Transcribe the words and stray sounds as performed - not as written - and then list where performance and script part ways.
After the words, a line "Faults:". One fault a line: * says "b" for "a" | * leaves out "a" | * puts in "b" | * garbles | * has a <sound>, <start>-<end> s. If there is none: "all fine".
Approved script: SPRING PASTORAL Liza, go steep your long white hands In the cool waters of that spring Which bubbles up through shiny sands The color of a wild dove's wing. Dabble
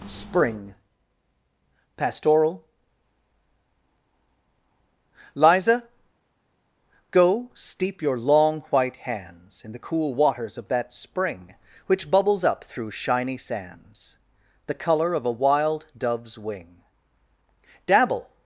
SPRING PASTORAL Liza, go steep your long white hands In the cool waters of that spring Which bubbles up through shiny sands The color of a wild dove's wing. Dabble
Faults:
all fine